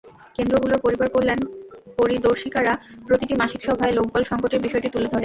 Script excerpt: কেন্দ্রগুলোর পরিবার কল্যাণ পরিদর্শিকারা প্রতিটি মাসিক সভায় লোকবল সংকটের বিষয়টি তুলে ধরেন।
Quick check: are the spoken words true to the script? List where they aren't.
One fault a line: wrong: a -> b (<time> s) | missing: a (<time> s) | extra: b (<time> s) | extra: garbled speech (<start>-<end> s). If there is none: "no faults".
no faults